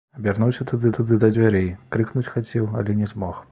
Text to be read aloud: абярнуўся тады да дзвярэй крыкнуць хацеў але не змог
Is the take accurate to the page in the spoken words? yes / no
no